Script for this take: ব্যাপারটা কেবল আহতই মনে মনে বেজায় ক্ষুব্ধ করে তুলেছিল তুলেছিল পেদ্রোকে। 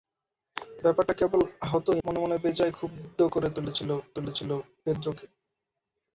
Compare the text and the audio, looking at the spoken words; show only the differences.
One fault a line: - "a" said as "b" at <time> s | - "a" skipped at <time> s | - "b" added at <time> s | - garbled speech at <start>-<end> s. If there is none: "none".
none